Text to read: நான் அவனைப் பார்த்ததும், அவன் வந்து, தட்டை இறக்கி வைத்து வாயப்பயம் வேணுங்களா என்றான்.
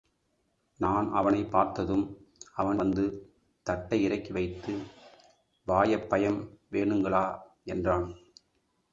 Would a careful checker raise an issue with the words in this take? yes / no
no